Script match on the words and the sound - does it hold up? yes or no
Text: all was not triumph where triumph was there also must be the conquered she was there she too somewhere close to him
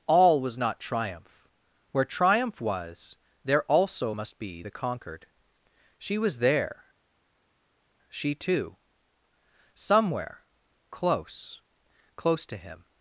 no